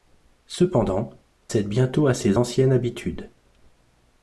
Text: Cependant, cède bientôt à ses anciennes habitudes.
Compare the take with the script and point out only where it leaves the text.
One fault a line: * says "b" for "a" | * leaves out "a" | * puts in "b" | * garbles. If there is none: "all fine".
all fine